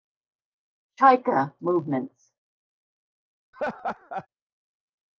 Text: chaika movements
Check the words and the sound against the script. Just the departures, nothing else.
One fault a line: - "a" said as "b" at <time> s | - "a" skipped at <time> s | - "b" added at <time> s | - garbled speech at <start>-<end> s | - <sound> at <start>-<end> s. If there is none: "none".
- laugh at 3.5-4.3 s